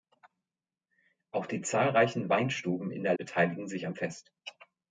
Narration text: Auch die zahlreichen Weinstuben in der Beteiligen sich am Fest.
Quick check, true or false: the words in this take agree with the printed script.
true